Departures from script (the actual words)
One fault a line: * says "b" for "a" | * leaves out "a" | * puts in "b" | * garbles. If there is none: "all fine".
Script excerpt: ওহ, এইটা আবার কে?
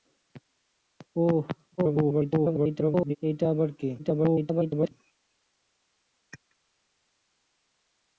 * garbles
* garbles